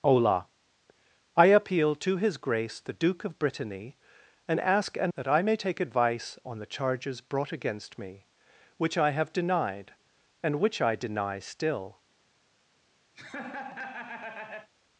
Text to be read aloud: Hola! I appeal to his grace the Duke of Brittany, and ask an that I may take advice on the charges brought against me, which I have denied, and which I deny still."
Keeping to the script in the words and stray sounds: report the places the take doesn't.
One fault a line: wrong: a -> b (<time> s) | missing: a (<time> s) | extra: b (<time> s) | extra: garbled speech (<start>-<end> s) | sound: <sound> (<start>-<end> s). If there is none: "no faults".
sound: laugh (13.1-14.7 s)